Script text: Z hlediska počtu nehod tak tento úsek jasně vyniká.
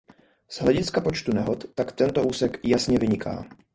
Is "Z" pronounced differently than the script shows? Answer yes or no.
no